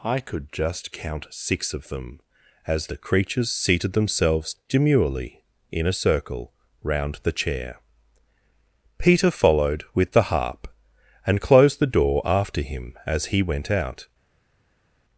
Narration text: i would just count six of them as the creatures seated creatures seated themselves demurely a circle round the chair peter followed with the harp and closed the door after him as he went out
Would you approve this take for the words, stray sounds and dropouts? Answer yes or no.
no